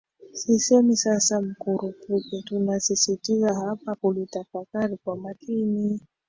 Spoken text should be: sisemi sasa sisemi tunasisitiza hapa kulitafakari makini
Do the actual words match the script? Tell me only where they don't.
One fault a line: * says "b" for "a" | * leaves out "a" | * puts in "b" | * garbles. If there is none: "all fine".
* says "mkurupuke" for "sisemi"
* puts in "kwa"